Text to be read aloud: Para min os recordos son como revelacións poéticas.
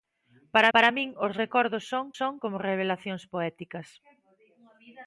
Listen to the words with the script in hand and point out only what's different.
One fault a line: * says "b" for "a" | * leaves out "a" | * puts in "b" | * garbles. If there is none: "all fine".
* puts in "para"
* puts in "son"